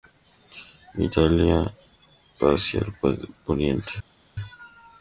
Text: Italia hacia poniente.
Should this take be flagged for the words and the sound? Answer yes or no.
yes